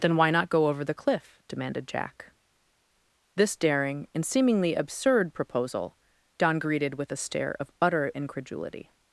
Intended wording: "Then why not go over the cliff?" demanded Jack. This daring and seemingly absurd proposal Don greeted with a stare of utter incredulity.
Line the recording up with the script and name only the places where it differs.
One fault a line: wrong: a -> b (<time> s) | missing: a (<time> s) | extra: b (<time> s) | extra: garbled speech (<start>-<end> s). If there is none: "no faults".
no faults